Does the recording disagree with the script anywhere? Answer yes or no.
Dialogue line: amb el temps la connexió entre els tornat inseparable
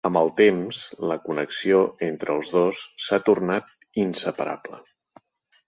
yes